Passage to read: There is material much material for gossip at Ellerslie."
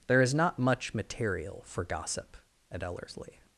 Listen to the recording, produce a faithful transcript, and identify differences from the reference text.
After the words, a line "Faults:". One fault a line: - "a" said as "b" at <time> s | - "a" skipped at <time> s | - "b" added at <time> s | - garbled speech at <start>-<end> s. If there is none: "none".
There is not much material for gossip at Ellerslie."
Faults:
- "material" said as "not" at 0.3 s